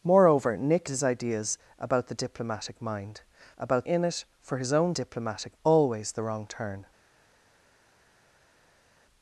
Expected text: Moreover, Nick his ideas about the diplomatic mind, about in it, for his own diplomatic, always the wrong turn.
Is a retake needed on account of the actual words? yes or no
no